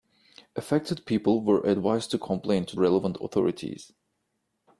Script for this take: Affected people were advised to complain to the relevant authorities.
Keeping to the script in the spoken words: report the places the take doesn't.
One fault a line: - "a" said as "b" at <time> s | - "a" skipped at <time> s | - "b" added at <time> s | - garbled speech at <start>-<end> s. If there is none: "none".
- "the" skipped at 2.8 s